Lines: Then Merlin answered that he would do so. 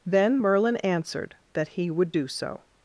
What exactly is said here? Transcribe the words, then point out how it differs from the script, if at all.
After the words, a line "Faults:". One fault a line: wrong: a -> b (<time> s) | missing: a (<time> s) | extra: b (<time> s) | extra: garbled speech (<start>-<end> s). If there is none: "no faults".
Then Merlin answered that he would do so.
Faults:
no faults